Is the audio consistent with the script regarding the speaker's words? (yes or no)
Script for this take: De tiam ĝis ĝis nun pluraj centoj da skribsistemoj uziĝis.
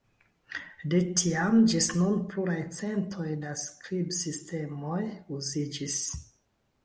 no